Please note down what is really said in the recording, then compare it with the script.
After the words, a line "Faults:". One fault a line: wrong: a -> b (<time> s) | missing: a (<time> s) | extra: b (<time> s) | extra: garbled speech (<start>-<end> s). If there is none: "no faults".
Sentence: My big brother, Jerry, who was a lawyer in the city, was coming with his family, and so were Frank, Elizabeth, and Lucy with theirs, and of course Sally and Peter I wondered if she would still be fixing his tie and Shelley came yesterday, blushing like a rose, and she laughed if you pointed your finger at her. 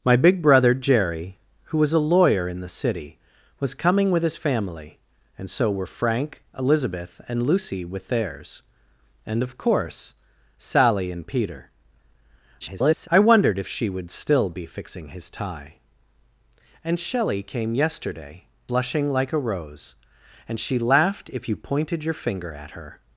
My big brother, Jerry, who was a lawyer in the city, was coming with his family, and so were Frank, Elizabeth, and Lucy with theirs, and of course Sally and Peter [garbled] I wondered if she would still be fixing his tie and Shelley came yesterday, blushing like a rose, and she laughed if you pointed your finger at her.
Faults:
extra: garbled speech (12.6-13.1 s)